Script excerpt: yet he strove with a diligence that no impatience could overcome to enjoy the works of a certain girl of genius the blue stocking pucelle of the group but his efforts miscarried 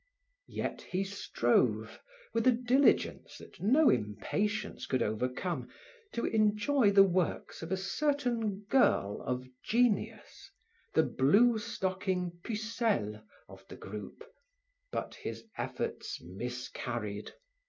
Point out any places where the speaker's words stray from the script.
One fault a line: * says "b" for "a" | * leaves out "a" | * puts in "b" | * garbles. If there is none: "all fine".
all fine